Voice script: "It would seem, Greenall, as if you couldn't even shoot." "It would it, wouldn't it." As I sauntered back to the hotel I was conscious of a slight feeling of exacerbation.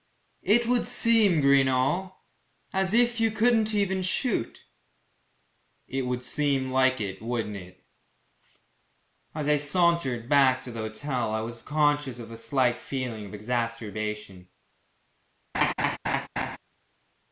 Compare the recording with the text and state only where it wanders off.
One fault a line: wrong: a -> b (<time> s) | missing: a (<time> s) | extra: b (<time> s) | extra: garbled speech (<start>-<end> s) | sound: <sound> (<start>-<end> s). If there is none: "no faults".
extra: seem like (6.2 s)
sound: laugh (15.5-16.6 s)